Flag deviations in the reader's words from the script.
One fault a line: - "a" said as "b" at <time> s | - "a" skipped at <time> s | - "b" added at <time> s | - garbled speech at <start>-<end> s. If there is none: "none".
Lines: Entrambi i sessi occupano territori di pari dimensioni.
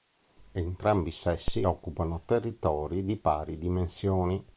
none